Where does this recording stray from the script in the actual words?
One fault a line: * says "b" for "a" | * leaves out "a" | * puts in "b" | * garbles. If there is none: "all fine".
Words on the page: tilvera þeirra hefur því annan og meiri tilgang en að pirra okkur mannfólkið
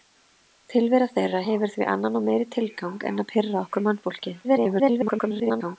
* garbles